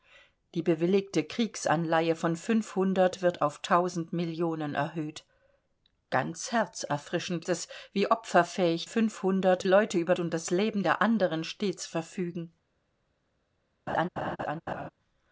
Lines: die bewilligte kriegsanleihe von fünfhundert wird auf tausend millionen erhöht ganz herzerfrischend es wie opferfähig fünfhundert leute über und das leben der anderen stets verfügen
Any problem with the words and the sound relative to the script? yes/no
yes